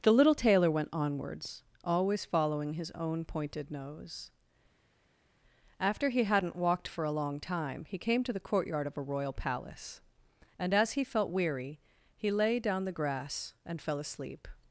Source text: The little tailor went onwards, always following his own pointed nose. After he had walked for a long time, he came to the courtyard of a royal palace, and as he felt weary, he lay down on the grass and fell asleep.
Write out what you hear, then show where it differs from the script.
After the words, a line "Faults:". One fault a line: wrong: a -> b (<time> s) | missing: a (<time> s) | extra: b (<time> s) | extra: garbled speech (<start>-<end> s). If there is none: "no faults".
The little tailor went onwards, always following his own pointed nose. After he hadn't walked for a long time, he came to the courtyard of a royal palace, and as he felt weary, he lay down the grass and fell asleep.
Faults:
wrong: had -> hadn't (6.2 s)
missing: on (12.8 s)